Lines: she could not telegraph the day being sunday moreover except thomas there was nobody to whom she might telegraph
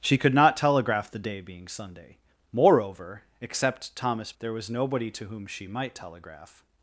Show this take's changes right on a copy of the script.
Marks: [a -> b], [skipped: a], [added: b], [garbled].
she could not telegraph the day being sunday moreover except thomas there was nobody to whom she might telegraph